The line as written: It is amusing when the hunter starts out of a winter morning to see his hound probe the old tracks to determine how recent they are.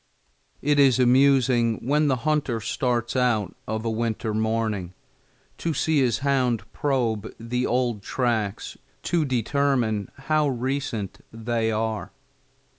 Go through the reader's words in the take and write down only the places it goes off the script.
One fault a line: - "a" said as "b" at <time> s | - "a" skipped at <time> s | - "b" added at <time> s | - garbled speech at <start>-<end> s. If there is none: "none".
none